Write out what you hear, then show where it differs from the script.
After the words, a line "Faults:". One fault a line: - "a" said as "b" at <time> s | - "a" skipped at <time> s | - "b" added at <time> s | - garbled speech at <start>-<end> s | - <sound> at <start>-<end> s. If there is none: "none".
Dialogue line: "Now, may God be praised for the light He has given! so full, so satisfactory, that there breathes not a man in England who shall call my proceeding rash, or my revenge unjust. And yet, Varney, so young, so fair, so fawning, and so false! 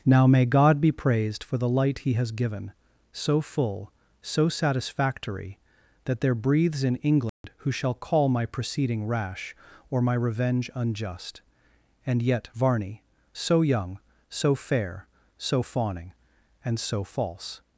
"Now, may God be praised for the light He has given! so full, so satisfactory, that there breathes in England who shall call my proceeding rash, or my revenge unjust. And yet, Varney, so young, so fair, so fawning, and so false!
Faults:
- "not a man" skipped at 6.8 s
- dropout at 7.3-7.4 s